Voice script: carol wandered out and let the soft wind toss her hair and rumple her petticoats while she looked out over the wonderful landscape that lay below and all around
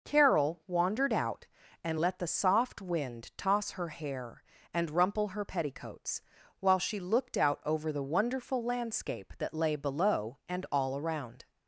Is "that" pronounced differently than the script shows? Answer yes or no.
no